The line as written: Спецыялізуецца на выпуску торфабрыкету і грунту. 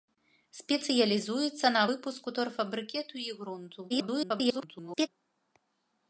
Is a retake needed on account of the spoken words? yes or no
yes